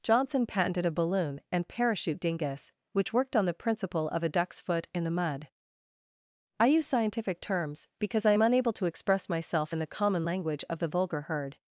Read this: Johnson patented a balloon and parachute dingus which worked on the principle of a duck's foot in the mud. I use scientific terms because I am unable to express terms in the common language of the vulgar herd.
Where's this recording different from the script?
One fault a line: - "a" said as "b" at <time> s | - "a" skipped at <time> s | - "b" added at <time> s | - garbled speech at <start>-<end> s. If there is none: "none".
- "terms" said as "myself" at 9.3 s